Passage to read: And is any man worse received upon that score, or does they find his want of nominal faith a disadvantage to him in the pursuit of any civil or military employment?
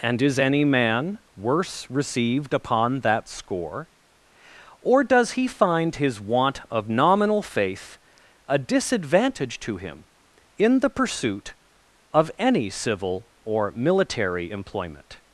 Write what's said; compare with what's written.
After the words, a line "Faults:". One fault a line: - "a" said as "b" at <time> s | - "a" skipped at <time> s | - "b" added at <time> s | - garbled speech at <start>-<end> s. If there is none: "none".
And is any man worse received upon that score, or does he find his want of nominal faith a disadvantage to him in the pursuit of any civil or military employment?
Faults:
- "they" said as "he" at 5.3 s